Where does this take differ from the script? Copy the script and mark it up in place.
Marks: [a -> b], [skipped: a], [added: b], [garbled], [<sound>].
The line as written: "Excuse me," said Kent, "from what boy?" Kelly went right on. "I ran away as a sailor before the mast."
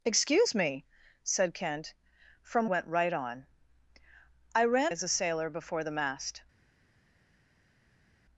"Excuse me," said Kent, "from [skipped: what boy?" Kelly] went right on. "I ran [skipped: away] as a sailor before the mast."